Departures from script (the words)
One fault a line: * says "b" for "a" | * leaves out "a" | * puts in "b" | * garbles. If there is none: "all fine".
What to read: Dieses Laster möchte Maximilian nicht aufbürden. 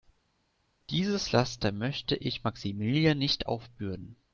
* puts in "ich"